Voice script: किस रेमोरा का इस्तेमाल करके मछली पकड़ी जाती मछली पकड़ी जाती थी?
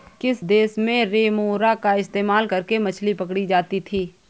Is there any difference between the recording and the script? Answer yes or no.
yes